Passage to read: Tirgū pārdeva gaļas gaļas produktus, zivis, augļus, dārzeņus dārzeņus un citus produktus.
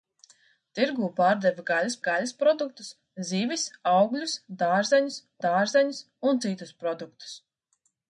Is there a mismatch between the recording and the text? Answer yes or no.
no